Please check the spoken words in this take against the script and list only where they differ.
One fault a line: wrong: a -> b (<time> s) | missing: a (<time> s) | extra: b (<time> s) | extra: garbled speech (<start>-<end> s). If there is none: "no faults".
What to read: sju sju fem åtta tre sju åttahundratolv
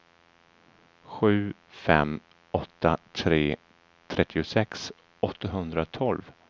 missing: sju (1.5 s)
wrong: sju -> trettiosex (4.1 s)